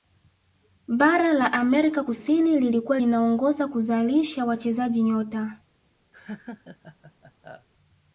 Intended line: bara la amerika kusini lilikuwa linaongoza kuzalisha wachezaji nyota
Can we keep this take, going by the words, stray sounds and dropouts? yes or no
no